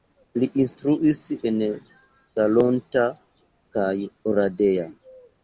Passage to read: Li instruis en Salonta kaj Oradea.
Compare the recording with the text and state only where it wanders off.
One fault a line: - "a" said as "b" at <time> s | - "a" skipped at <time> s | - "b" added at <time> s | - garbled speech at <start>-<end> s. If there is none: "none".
none